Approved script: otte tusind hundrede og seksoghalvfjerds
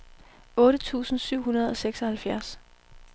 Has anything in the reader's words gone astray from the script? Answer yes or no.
yes